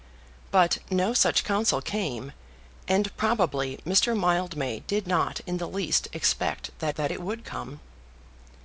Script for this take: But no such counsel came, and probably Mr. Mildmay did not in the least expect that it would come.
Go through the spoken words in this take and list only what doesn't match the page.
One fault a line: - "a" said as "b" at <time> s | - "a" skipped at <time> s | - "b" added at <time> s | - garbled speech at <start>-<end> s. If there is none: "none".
- "that" added at 6.9 s